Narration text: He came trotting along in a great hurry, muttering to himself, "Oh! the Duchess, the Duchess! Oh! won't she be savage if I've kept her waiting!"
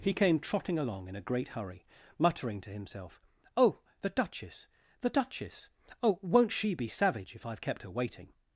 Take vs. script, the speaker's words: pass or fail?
pass